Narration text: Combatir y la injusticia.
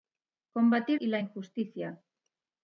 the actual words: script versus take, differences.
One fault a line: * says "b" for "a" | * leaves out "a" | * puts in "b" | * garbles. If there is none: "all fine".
all fine